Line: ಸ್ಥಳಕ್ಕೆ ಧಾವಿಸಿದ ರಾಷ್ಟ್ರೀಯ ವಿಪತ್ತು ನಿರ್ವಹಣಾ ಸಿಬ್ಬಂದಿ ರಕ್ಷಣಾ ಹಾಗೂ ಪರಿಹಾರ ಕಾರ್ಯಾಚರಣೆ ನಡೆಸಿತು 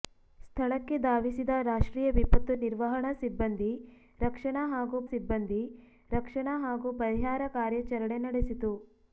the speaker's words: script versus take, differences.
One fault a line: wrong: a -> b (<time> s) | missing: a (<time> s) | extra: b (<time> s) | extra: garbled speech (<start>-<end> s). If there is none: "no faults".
extra: ಸಿಬ್ಬಂದಿ ರಕ್ಷಣಾ ಹಾಗೂ (5.0 s)